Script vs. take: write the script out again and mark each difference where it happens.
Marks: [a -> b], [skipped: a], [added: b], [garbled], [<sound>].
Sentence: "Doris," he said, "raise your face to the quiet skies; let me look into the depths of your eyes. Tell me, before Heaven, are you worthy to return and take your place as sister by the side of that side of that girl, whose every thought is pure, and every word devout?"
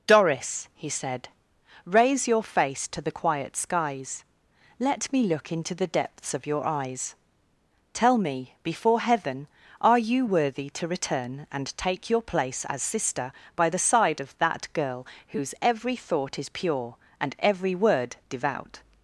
"Doris," he said, "raise your face to the quiet skies; let me look into the depths of your eyes. Tell me, before Heaven, are you worthy to return and take your place as sister by the side of that [skipped: side of that] girl, whose every thought is pure, and every word devout?"